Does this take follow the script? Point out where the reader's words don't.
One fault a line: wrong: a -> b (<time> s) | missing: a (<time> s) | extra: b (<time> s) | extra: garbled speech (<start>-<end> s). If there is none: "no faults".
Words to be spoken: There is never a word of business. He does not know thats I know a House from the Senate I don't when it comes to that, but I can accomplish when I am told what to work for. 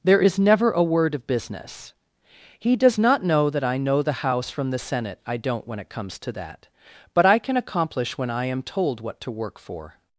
wrong: thats -> that (3.5 s)
wrong: a -> the (4.0 s)